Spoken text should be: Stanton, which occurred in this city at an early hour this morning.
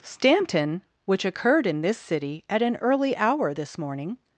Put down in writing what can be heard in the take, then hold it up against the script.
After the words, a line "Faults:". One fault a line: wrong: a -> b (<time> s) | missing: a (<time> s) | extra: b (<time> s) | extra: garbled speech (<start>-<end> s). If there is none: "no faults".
Stanton, which occurred in this city at an early hour this morning.
Faults:
no faults